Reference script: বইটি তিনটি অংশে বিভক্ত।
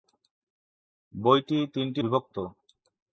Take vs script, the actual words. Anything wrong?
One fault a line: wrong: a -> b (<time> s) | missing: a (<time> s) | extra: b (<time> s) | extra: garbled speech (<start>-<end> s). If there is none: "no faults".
missing: অংশে (2.0 s)